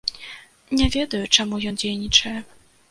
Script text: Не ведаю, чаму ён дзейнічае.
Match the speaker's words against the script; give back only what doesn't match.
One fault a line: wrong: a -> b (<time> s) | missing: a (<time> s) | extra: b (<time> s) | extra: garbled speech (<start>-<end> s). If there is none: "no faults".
no faults